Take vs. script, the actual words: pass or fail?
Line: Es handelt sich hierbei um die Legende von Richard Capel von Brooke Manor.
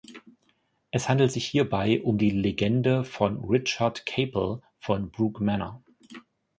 pass